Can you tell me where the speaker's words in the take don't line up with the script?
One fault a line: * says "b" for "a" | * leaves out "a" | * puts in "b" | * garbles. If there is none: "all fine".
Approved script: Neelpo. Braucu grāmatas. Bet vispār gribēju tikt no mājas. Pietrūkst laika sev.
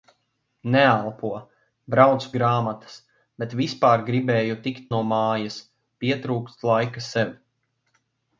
all fine